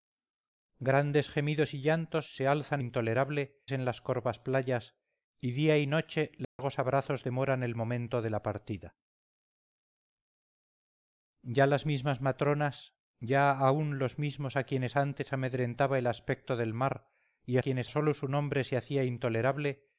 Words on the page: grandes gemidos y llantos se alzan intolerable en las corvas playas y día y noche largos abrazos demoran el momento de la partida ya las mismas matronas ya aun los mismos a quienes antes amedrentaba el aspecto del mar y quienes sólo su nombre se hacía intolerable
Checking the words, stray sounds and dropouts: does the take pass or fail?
fail